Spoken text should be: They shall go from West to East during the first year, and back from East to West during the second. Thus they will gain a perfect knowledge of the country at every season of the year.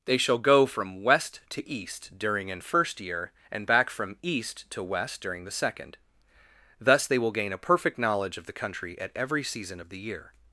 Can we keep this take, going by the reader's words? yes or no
no